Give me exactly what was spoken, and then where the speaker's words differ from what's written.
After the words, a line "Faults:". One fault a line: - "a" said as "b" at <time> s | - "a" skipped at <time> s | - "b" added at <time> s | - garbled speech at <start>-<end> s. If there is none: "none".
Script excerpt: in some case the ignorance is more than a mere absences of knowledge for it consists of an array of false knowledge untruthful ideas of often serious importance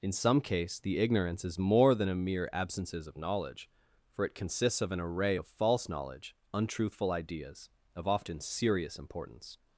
in some case the ignorance is more than a mere absences of knowledge for it consists of an array of false knowledge untruthful ideas of often serious importance
Faults:
none